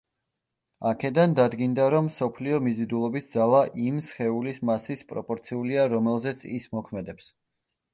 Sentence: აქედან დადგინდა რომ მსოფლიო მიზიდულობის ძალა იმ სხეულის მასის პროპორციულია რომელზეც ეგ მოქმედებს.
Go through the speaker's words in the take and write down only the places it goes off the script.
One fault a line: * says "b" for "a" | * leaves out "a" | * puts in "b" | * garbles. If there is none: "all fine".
* says "ის" for "ეგ"